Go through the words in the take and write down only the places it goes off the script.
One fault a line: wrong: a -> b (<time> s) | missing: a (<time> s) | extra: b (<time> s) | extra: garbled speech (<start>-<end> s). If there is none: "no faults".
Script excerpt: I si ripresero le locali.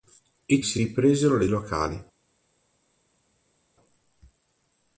no faults